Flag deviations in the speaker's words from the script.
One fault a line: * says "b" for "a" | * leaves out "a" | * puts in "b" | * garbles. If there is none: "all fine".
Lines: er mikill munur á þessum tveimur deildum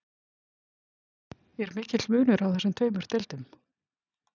all fine